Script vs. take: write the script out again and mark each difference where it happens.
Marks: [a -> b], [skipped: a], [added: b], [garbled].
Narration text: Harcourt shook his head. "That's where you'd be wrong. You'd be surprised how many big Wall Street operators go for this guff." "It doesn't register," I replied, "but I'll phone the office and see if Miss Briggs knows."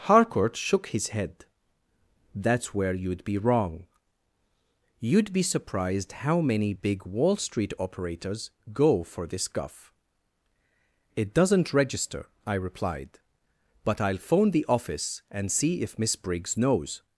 Harcourt shook his head. "That's where you'd be wrong. You'd be surprised how many big Wall Street operators go for this guff." "It doesn't register," I replied, "but I'll phone the office and see if Miss Briggs knows."